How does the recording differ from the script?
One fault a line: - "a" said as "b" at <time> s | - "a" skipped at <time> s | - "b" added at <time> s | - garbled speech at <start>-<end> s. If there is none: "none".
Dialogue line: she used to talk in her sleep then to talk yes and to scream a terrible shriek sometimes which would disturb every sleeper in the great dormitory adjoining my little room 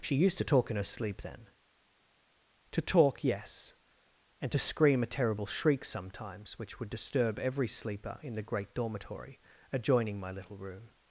none